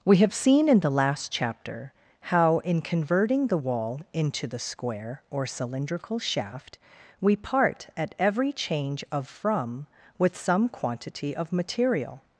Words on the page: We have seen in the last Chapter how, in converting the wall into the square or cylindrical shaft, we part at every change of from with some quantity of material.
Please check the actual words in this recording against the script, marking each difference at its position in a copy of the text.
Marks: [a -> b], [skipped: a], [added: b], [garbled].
We have seen in the last Chapter how, in converting the wall into the square or cylindrical shaft, we part at every change of from with some quantity of material.